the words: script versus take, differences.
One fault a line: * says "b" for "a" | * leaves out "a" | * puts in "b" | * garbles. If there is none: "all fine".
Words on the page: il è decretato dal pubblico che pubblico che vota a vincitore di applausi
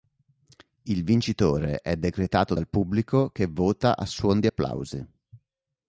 * puts in "vincitore"
* leaves out "pubblico che"
* says "suon" for "vincitore"